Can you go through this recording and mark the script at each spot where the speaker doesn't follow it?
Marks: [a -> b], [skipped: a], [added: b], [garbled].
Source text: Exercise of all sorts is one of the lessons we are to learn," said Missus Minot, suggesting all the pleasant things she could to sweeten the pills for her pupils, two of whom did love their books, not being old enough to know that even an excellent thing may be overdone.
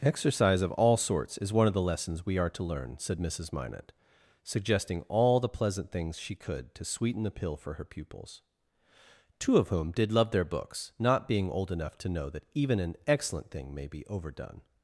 Exercise of all sorts is one of the lessons we are to learn," said Missus Minot, suggesting all the pleasant things she could to sweeten the [pills -> pill] for her pupils, two of whom did love their books, not being old enough to know that even an excellent thing may be overdone.